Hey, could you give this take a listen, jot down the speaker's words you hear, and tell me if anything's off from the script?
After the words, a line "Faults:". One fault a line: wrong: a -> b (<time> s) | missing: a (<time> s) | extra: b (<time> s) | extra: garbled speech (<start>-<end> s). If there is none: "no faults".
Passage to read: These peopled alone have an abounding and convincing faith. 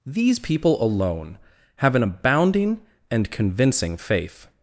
These people alone have an abounding and convincing faith.
Faults:
wrong: peopled -> people (0.4 s)